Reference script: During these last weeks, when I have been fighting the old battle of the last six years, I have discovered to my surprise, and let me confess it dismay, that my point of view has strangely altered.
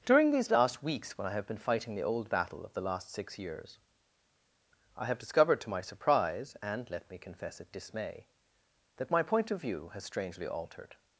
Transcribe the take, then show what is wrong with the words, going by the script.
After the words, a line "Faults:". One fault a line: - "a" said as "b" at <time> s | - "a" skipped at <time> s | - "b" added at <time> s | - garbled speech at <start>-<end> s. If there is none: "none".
During these last weeks, when I have been fighting the old battle of the last six years, I have discovered to my surprise, and let me confess it dismay, that my point of view has strangely altered.
Faults:
none